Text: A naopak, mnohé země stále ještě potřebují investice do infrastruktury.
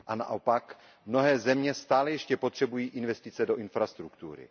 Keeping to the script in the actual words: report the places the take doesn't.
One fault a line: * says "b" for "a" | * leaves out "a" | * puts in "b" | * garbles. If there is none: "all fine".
all fine